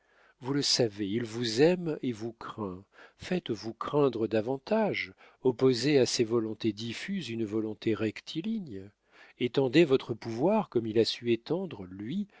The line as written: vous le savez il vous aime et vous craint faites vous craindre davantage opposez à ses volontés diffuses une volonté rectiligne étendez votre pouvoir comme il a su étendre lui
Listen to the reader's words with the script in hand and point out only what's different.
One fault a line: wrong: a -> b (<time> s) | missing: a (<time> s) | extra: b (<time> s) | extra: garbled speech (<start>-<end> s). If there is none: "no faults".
no faults